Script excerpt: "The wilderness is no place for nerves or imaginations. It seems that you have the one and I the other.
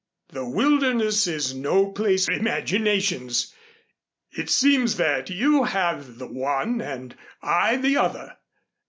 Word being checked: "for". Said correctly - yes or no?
no